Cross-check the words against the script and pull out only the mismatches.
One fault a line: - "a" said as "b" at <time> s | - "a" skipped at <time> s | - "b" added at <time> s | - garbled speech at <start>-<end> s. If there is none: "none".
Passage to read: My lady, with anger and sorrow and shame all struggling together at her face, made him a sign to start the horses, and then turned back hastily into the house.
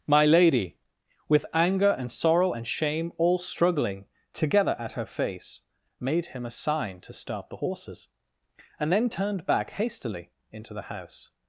none